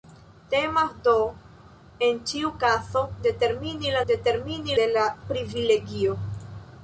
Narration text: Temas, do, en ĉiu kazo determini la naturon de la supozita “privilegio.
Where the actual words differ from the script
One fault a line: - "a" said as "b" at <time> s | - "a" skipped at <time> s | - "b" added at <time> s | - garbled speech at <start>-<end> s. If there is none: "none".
- "naturon" said as "determini" at 4.1 s
- "supozita" skipped at 5.1 s